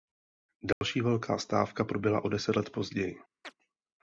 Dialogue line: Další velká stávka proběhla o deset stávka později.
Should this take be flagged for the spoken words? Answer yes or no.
yes